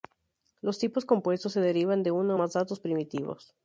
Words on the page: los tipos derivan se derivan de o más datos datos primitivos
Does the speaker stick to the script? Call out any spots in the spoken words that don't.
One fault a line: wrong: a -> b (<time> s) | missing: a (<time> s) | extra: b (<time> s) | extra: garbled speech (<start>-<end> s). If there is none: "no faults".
wrong: derivan -> compuestos (1.1 s)
extra: uno (2.1 s)
missing: datos (2.8 s)